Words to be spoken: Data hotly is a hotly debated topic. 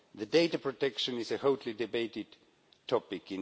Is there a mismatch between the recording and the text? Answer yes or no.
yes